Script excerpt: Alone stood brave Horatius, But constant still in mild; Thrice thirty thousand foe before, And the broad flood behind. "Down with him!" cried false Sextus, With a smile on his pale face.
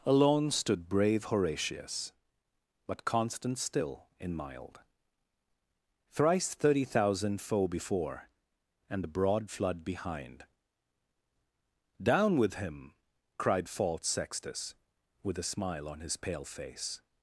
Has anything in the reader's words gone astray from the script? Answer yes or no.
no